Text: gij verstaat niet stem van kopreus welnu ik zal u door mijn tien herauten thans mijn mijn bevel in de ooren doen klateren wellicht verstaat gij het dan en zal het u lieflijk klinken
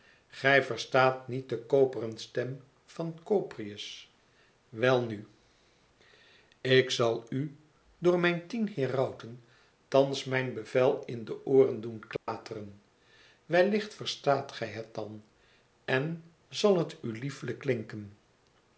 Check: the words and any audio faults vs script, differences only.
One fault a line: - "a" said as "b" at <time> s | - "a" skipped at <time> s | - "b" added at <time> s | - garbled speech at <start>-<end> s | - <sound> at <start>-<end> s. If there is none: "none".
- "de koperen" added at 1.5 s
- "mijn" skipped at 10.5 s
- dropout at 12.2-12.3 s